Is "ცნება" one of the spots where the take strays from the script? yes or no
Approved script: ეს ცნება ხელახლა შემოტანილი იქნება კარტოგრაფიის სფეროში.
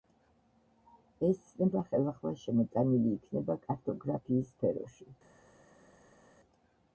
no